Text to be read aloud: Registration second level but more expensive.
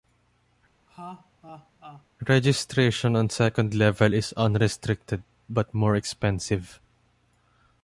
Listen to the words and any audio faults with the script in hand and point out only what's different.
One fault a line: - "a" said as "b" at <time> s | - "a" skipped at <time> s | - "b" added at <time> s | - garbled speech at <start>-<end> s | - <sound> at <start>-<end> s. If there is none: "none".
- laugh at 0.9-2.1 s
- "on" added at 3.2 s
- "is unrestricted" added at 4.1 s